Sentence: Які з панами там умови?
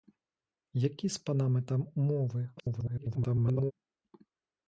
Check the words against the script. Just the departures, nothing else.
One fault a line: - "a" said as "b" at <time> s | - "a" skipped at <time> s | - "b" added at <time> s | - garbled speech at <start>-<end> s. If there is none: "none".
- garbled speech at 2.6-3.7 s